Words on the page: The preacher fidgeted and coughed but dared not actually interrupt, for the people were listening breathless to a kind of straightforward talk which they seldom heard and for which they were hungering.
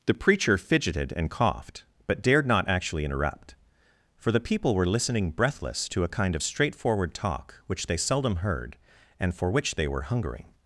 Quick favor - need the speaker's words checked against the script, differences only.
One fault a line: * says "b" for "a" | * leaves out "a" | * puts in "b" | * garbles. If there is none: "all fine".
all fine